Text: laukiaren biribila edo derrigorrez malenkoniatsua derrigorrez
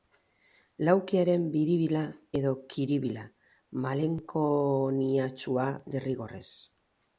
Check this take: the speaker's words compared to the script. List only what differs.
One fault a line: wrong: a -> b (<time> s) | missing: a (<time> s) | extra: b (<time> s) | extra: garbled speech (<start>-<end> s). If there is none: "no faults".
wrong: derrigorrez -> kiribila (2.7 s)